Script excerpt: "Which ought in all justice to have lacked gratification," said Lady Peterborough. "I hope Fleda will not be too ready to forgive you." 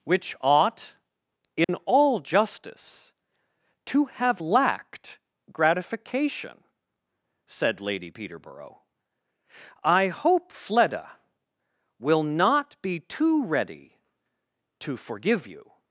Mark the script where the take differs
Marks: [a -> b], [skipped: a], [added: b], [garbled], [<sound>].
"Which ought in [dropout] all justice to have lacked gratification," said Lady Peterborough. "I hope Fleda will not be too ready to forgive you."